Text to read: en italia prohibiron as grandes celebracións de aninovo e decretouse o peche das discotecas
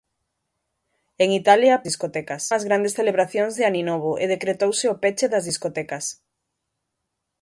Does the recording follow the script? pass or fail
fail